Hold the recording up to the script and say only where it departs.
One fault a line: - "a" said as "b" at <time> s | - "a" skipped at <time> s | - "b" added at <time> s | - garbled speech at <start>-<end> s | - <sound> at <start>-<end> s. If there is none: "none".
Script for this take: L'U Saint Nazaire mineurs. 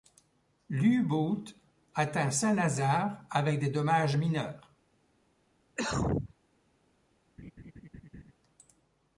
- "Boot atteint" added at 1.0 s
- "avec des dommages" added at 3.3 s
- cough at 5.8-6.3 s
- laugh at 7.4-8.3 s